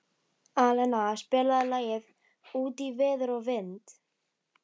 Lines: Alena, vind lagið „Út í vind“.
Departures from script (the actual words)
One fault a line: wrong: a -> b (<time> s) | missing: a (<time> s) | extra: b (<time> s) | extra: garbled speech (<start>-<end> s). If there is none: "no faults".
wrong: vind -> spilaðu (1.2 s)
extra: veður og (3.0 s)